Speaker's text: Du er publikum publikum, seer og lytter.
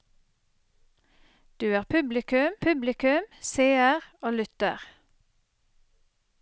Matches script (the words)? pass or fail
pass